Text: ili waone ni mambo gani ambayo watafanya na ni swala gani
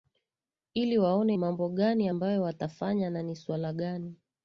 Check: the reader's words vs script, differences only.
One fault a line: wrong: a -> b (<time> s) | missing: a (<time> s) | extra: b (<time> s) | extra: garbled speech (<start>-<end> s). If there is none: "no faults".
missing: ni (1.4 s)